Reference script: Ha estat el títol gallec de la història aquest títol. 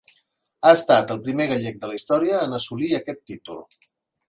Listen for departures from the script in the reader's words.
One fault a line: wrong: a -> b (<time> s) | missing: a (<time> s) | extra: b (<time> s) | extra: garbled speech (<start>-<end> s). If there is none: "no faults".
wrong: títol -> primer (1.3 s)
extra: en assolir (2.4 s)